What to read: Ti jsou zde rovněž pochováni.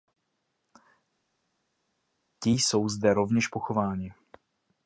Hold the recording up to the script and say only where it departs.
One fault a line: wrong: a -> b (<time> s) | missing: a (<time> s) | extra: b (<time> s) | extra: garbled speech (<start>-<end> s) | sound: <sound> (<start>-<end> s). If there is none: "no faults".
no faults